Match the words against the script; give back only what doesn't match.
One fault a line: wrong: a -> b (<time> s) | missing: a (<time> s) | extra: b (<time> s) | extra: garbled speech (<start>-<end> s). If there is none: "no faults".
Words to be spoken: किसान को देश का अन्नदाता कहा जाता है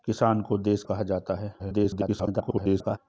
missing: का अन्नदाता (0.8 s)
extra: garbled speech (1.6-3.0 s)